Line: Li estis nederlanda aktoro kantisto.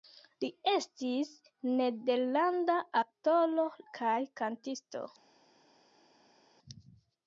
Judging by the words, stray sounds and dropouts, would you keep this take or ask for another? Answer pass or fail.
fail